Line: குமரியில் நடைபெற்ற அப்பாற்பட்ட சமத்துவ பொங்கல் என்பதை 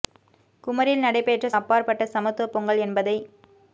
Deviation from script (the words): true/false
false